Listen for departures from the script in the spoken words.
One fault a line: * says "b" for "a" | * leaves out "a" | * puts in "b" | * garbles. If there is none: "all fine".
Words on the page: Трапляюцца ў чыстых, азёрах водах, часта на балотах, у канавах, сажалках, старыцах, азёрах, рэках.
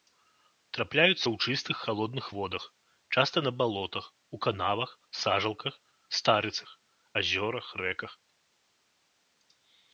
* says "халодных" for "азёрах"